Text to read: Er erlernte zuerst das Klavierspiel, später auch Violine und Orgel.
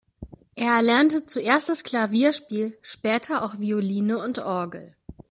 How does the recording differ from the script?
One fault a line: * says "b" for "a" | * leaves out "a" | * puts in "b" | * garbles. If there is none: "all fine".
all fine